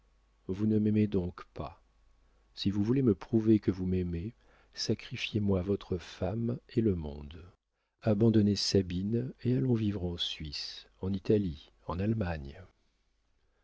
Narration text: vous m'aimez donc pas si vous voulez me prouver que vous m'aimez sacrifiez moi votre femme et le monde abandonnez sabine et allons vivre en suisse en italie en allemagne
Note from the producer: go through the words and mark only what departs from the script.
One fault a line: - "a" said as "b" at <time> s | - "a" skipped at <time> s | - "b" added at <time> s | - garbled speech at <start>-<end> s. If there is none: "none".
- "ne" added at 0.7 s